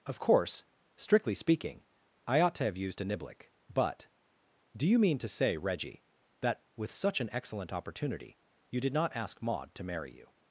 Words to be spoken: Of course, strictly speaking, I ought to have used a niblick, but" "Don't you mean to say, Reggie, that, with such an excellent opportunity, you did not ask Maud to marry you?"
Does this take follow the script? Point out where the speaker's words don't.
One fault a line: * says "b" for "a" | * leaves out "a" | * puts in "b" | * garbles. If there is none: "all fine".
* says "Do" for "Don't"